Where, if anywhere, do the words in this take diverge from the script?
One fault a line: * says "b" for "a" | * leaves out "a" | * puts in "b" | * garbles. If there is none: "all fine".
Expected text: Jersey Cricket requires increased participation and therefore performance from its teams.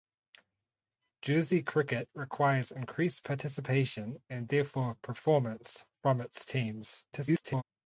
* garbles